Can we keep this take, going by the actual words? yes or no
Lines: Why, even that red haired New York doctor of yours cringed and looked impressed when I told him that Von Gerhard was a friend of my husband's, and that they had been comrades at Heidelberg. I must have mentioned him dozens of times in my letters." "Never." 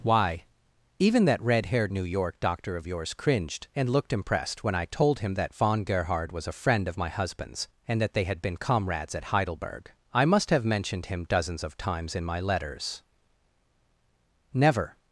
yes